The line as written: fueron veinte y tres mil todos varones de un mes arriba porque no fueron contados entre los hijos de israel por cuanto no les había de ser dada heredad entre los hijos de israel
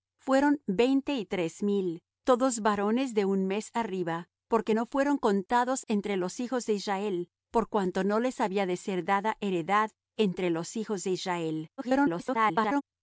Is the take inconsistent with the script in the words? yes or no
yes